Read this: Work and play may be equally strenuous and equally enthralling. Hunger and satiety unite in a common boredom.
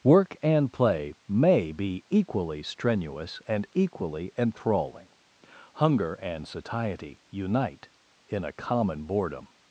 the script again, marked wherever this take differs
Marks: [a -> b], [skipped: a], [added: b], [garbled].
Work and play may be equally strenuous and equally enthralling. Hunger and satiety unite in a common boredom.